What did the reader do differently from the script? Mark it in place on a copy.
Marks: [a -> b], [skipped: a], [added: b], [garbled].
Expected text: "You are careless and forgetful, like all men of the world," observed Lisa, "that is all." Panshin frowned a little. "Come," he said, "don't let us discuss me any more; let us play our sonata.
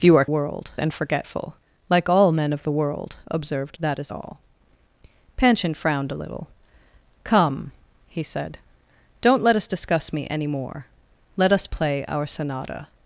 "You are [careless -> world] and forgetful, like all men of the world," observed [skipped: Lisa,] "that is all." Panshin frowned a little. "Come," he said, "don't let us discuss me any more; let us play our sonata.